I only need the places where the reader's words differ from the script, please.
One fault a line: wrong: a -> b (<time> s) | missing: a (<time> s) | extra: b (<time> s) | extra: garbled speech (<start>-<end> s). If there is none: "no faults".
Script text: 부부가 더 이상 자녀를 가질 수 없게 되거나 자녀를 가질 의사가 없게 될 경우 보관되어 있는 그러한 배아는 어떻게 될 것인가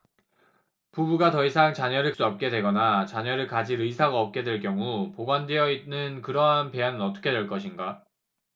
missing: 가질 (2.1 s)